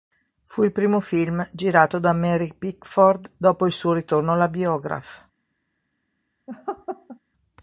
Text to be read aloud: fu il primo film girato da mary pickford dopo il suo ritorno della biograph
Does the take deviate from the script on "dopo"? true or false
false